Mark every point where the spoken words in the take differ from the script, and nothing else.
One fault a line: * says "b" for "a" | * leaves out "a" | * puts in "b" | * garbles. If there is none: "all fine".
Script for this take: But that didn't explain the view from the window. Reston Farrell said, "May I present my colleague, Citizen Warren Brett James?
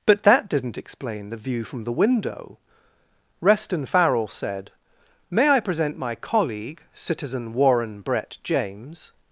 all fine